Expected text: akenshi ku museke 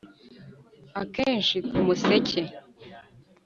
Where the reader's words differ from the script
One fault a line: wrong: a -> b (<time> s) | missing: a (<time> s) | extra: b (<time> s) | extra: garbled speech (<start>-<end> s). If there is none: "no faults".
no faults